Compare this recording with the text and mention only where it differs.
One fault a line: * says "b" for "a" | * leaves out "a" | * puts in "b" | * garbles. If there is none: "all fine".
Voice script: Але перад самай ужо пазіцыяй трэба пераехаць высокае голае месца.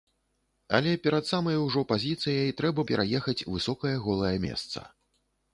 all fine